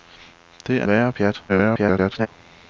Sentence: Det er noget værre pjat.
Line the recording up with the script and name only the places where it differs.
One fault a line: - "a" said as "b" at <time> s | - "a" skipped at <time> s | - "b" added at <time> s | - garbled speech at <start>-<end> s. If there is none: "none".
- "noget" skipped at 0.9 s
- garbled speech at 1.5-2.3 s